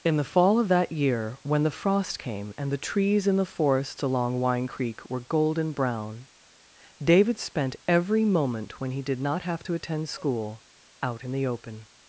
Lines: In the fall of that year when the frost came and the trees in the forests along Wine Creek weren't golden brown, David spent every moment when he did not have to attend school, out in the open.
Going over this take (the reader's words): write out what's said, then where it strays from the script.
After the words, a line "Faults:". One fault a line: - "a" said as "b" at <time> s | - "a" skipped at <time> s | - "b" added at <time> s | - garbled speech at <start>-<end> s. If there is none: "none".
In the fall of that year when the frost came and the trees in the forests along Wine Creek were golden brown, David spent every moment when he did not have to attend school, out in the open.
Faults:
- "weren't" said as "were" at 5.1 s